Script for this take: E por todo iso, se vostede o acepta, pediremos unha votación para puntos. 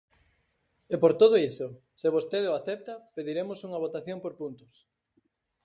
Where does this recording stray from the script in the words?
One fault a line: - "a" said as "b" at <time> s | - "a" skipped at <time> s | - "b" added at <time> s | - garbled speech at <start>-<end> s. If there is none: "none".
- "para" said as "por" at 4.2 s